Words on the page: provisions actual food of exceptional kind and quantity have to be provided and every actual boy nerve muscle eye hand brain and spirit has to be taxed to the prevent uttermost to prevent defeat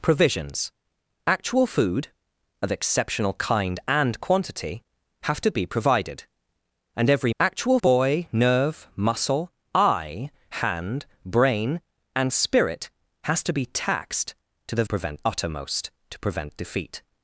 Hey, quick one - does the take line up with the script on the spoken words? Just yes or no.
yes